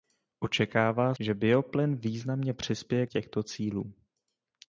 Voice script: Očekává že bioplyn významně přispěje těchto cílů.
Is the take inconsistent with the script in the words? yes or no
no